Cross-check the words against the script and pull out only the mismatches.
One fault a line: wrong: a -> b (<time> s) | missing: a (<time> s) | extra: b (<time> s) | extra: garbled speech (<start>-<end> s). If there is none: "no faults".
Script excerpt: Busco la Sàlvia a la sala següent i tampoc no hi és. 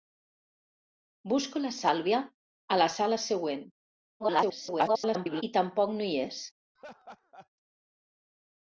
extra: garbled speech (4.2-5.4 s)